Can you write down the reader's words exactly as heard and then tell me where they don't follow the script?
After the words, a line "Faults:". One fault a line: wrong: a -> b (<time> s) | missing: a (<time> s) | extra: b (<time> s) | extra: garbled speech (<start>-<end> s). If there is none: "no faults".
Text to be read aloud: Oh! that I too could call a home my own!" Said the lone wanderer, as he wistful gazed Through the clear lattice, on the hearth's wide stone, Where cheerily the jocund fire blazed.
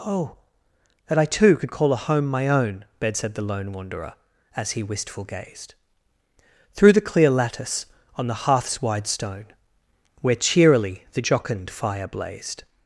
Oh! that I too could call a home my own!" bed Said the lone wanderer, as he wistful gazed Through the clear lattice, on the hearth's wide stone, Where cheerily the jocund fire blazed.
Faults:
extra: bed (3.0 s)